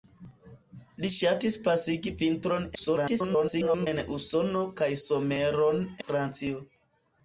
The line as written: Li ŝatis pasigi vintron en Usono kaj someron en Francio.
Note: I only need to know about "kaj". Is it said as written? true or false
true